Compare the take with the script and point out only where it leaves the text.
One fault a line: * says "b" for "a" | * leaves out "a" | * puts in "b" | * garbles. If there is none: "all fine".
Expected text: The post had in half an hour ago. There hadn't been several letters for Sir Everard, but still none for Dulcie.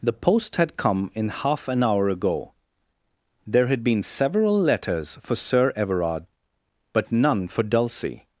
* puts in "come"
* says "had" for "hadn't"
* leaves out "still"